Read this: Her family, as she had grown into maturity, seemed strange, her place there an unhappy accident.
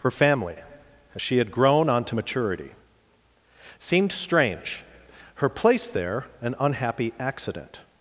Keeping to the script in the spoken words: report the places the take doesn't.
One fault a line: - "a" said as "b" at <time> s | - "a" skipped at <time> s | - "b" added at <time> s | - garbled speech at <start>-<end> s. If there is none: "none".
- "into" said as "onto" at 1.9 s